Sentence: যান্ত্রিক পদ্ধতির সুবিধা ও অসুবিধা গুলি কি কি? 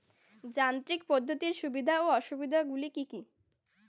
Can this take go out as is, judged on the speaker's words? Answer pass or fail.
pass